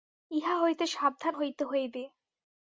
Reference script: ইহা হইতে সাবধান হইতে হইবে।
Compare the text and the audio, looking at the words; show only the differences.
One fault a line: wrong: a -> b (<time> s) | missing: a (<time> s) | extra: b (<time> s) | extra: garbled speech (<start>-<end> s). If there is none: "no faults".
no faults